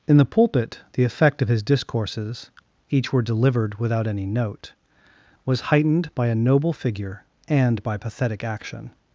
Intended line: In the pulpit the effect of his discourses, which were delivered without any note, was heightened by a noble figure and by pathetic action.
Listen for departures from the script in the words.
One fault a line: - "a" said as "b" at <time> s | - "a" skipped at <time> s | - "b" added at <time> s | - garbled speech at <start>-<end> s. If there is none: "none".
- "which" said as "each" at 2.9 s